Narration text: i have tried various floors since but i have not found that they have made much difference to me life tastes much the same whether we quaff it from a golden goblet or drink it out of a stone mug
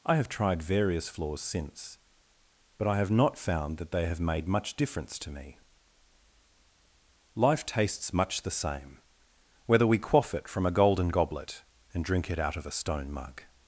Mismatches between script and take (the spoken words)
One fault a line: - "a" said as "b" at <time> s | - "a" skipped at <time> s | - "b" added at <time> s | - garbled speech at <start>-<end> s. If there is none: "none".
- "or" said as "and" at 11.9 s